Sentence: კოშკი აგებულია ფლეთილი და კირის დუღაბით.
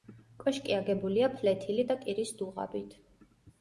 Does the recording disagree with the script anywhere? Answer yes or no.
no